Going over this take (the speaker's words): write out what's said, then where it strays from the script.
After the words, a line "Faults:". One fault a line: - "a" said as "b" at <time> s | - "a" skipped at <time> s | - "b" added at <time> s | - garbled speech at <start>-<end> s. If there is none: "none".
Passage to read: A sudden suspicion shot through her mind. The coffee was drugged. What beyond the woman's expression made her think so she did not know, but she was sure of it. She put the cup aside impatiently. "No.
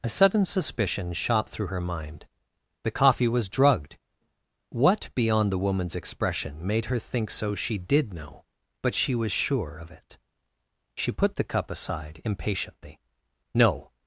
A sudden suspicion shot through her mind. The coffee was drugged. What beyond the woman's expression made her think so she did know, but she was sure of it. She put the cup aside impatiently. "No.
Faults:
- "not" skipped at 8.1 s